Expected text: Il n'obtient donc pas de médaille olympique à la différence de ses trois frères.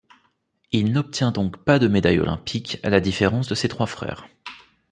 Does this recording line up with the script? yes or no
yes